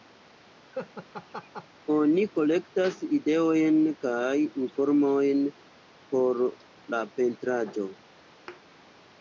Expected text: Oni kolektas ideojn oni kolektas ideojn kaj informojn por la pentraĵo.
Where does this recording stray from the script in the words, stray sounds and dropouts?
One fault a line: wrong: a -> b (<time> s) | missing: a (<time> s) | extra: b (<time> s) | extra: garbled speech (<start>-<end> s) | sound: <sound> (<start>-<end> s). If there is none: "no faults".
sound: laugh (0.7-1.7 s)
missing: oni kolektas ideojn (3.8 s)
sound: thud (8.5-8.6 s)